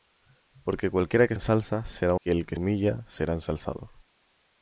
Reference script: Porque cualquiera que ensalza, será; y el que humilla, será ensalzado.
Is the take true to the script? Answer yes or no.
yes